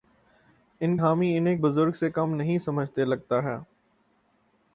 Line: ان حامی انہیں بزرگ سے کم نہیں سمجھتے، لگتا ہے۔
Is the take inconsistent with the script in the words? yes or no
no